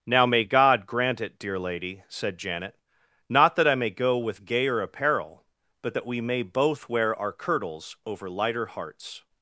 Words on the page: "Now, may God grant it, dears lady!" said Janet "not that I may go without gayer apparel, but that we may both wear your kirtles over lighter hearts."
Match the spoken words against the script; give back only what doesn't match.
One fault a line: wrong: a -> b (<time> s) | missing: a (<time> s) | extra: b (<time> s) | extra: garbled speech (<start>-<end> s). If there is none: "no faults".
wrong: dears -> dear (1.4 s)
wrong: without -> with (4.2 s)
wrong: your -> our (7.2 s)